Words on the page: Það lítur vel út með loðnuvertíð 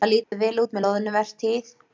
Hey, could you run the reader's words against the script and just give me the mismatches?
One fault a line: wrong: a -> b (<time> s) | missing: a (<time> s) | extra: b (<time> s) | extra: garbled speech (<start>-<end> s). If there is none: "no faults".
no faults